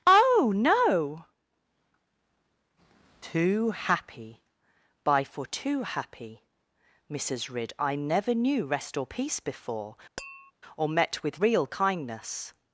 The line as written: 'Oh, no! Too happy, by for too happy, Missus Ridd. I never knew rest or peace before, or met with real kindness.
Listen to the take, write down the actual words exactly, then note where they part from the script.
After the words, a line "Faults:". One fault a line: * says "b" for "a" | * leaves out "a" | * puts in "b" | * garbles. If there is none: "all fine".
'Oh, no! Too happy, by for too happy, Missus Ridd. I never knew rest or peace before, or met with real kindness.
Faults:
all fine